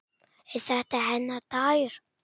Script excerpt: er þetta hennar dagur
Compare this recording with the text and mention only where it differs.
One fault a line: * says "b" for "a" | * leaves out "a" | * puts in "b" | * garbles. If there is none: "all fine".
all fine